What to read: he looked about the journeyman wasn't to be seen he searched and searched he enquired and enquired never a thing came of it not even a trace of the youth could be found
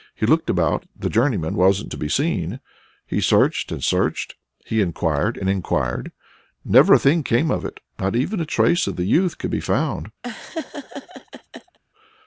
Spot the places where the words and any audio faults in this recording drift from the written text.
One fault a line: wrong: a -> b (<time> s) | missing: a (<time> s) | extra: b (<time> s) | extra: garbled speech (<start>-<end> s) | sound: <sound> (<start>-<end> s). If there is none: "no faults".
sound: laugh (10.2-11.8 s)